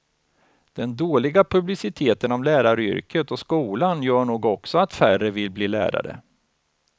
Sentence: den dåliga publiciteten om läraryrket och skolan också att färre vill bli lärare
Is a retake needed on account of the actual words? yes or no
yes